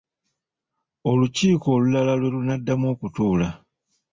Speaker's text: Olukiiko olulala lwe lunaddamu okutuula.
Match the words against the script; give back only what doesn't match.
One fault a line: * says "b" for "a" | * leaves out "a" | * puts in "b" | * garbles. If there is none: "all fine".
all fine